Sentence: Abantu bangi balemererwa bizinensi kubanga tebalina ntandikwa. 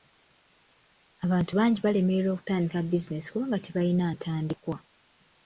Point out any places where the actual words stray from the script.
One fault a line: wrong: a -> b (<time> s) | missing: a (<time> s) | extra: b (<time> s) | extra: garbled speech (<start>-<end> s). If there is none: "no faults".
extra: okutandika (2.3 s)